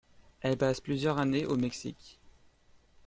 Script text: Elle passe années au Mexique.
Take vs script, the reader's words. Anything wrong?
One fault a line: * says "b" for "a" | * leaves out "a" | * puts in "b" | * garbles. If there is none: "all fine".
* puts in "plusieurs"